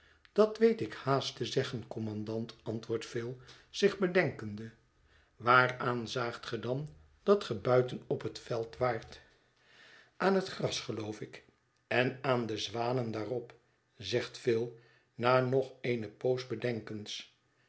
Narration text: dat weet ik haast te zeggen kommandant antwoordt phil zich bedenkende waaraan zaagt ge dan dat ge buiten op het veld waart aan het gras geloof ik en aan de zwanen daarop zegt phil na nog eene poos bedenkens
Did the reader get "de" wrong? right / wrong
right